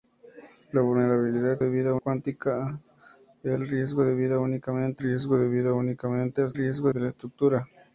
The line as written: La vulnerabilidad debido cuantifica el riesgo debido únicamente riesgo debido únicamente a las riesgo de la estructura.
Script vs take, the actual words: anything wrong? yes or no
no